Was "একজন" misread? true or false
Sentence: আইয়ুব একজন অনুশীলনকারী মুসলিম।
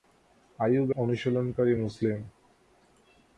true